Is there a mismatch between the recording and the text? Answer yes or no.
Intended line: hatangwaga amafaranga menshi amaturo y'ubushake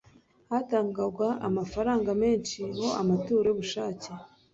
yes